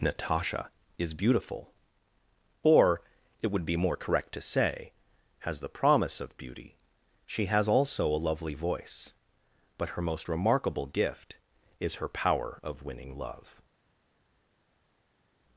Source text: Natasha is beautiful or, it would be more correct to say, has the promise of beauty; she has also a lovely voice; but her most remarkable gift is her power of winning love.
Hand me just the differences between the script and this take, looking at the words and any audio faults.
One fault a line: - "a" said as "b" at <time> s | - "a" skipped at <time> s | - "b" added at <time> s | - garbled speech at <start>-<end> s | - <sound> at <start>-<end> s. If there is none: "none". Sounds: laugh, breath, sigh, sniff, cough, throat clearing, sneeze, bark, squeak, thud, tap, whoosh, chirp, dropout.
none